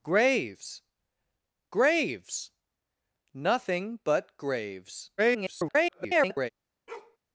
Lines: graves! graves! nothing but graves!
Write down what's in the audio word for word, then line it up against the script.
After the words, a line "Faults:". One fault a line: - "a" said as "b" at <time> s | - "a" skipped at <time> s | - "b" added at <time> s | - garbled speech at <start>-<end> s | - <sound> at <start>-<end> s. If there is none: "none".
graves! graves! nothing but graves! [garbled]
Faults:
- garbled speech at 5.2-6.5 s
- bark at 6.9-7.2 s